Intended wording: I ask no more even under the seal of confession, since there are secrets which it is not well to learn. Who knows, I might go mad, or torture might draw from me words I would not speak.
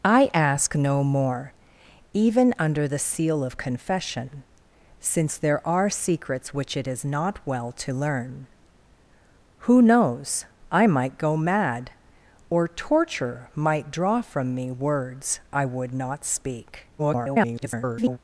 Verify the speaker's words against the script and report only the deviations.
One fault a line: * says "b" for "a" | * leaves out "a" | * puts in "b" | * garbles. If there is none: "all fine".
* garbles